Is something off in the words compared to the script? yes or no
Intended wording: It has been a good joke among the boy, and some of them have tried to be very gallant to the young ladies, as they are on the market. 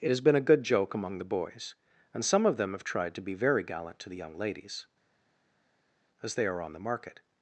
yes